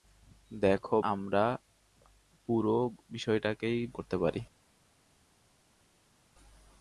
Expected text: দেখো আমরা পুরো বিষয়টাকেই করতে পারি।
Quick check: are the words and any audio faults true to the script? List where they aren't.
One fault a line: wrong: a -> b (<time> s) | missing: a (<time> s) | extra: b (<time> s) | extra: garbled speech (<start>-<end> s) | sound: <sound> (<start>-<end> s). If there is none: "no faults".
no faults